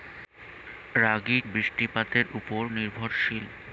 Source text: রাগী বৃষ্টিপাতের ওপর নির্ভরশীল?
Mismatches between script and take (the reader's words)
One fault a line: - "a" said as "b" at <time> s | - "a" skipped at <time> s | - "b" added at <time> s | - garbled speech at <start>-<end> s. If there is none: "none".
none